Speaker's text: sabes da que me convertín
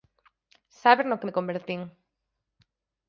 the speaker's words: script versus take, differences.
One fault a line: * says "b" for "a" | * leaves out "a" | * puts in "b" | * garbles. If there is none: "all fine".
* says "no" for "da"